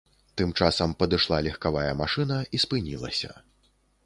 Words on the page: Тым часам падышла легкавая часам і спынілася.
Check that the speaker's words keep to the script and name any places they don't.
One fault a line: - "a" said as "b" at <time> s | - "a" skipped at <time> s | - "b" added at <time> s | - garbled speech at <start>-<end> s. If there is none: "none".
- "часам" said as "машына" at 2.0 s